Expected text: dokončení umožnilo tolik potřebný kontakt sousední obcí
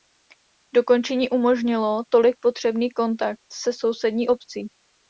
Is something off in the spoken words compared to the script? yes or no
yes